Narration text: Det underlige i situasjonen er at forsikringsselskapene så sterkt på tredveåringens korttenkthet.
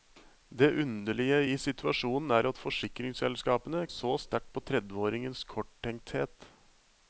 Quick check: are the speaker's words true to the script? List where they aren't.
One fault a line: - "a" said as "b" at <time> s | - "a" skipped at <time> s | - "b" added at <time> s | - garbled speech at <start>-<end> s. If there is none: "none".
none